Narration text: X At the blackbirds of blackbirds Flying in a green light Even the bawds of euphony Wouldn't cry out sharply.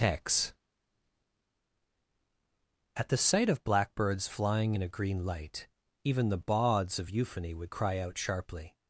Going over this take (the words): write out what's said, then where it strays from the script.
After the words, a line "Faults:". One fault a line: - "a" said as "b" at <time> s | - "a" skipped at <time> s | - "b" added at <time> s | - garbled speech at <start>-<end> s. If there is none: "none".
X At the sight of blackbirds Flying in a green light Even the bawds of euphony Would cry out sharply.
Faults:
- "blackbirds" said as "sight" at 3.2 s
- "Wouldn't" said as "Would" at 7.6 s